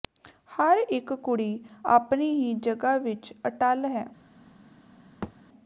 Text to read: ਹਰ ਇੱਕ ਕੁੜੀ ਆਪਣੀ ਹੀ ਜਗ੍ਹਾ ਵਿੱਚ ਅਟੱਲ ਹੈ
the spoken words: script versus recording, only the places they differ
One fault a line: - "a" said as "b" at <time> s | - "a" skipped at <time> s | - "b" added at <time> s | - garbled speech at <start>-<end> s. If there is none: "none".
none